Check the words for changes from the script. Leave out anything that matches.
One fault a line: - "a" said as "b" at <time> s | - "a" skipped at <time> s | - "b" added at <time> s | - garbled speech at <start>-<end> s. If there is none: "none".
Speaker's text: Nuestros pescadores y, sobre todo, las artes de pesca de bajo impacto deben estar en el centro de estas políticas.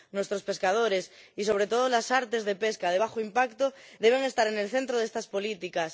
none